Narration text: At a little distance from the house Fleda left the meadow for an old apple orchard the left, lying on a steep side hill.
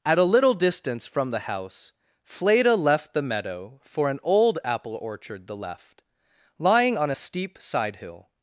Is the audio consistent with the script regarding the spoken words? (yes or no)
yes